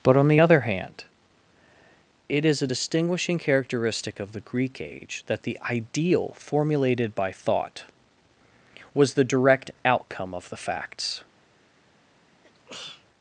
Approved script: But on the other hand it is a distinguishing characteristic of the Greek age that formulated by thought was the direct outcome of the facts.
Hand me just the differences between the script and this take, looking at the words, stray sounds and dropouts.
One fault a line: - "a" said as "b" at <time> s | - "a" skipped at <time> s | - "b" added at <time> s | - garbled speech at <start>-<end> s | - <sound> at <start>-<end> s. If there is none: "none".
- "the ideal" added at 5.4 s
- sneeze at 12.4-13.1 s